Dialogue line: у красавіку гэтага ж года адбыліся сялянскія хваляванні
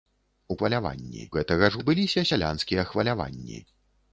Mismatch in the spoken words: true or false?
true